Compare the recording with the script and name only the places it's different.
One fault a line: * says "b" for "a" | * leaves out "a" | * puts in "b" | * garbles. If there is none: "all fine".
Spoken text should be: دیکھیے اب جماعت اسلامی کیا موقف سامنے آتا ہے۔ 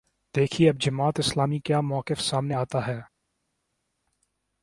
all fine